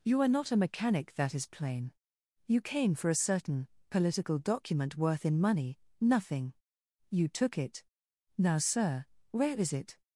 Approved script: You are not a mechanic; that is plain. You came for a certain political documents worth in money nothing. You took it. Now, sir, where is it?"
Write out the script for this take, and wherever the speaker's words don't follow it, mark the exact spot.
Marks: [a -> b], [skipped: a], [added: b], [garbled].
You are not a mechanic; that is plain. You came for a certain political [documents -> document] worth in money nothing. You took it. Now, sir, where is it?"